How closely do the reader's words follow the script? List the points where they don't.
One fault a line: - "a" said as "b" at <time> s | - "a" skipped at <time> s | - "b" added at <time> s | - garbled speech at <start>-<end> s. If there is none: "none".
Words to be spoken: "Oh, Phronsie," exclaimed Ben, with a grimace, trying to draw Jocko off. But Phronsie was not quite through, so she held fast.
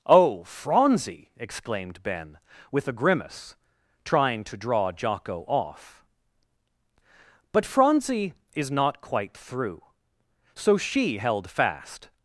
- "was" said as "is" at 8.5 s